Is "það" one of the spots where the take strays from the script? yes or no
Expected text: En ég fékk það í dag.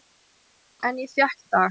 yes